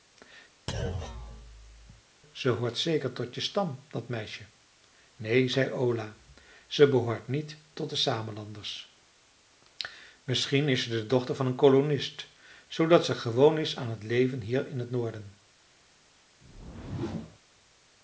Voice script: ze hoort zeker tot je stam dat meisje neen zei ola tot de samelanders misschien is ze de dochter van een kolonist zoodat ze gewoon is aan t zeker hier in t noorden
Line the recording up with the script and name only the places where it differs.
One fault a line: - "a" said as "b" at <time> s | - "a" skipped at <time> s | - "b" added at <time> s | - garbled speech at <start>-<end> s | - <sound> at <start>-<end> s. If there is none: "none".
- thud at 0.7-2.0 s
- "ze behoort niet" added at 6.7 s
- "zeker" said as "leven" at 14.0 s
- whoosh at 16.4-17.4 s